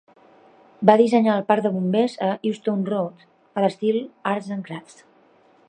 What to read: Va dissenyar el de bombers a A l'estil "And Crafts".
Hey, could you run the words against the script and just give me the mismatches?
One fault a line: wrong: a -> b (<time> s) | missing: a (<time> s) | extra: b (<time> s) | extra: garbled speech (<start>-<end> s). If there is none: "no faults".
extra: parc (1.5 s)
extra: Euston Road (2.5 s)
extra: Arts (4.3 s)